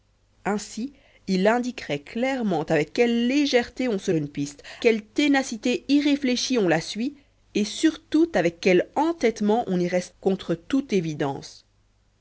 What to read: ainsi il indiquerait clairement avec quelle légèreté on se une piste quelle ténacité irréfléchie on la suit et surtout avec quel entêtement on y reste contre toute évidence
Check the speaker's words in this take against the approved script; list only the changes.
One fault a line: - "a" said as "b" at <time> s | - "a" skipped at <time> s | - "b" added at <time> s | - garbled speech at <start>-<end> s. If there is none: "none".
none